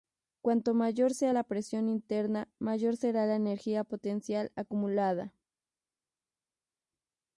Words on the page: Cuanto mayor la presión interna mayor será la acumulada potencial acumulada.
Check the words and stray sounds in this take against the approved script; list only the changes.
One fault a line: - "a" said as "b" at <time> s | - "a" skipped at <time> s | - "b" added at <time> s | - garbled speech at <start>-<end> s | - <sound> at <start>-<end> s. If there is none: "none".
- "sea" added at 1.1 s
- "acumulada" said as "energía" at 3.3 s